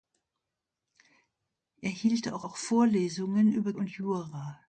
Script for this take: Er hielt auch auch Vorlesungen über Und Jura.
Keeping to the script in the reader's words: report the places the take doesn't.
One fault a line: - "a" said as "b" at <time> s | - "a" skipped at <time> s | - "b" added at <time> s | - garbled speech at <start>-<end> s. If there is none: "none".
none